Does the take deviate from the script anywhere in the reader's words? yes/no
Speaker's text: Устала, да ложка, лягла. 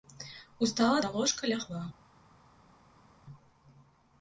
no